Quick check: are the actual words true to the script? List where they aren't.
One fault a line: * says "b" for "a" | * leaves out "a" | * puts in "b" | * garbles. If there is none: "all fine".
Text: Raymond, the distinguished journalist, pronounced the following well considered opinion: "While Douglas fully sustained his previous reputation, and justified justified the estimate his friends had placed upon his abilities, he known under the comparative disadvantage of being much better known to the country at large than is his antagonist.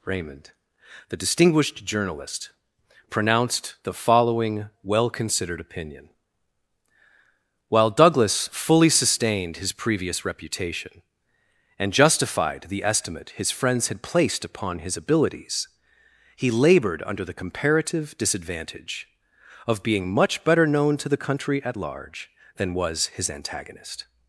* leaves out "justified"
* says "labored" for "known"
* says "was" for "is"